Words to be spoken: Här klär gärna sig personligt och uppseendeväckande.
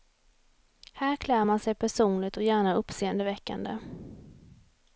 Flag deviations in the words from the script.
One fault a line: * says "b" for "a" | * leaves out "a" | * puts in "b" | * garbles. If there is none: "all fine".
* says "man" for "gärna"
* puts in "gärna"